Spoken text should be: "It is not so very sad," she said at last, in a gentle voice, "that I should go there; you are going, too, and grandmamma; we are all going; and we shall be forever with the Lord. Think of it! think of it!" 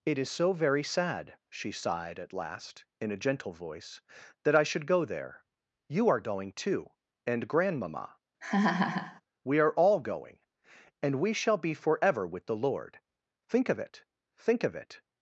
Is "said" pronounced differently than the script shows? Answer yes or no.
yes